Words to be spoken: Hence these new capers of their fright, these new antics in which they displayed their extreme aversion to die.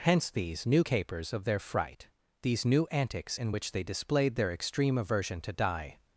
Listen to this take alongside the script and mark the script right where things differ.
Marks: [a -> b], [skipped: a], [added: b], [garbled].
Hence these new capers of their fright, these new antics in which they displayed their extreme aversion to die.